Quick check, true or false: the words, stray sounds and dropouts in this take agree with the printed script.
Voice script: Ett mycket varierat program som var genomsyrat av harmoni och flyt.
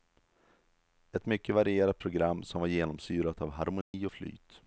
false